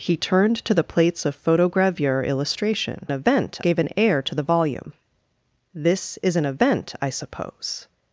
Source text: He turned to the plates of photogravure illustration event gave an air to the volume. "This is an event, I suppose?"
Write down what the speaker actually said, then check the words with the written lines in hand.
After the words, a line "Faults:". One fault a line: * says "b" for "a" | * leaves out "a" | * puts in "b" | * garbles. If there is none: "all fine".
He turned to the plates of photogravure illustration event gave an air to the volume. "This is an event, I suppose?"
Faults:
all fine